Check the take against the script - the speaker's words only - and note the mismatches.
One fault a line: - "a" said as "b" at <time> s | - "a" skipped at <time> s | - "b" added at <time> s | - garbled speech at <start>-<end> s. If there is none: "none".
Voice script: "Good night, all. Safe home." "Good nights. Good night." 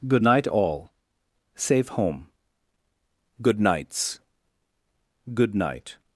none